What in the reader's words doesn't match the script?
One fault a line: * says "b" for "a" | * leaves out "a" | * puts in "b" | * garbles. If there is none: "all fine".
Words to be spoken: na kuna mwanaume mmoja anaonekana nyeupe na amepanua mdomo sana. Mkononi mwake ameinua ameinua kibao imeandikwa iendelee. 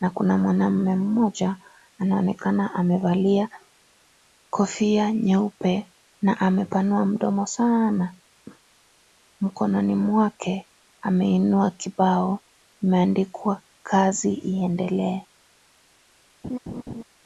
* puts in "amevalia kofia"
* leaves out "ameinua"
* puts in "kazi"